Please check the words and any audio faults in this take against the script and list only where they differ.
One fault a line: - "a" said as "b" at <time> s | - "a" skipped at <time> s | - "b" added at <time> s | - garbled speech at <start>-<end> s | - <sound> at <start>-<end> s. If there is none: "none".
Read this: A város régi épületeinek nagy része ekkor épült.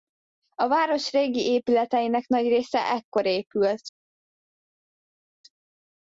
none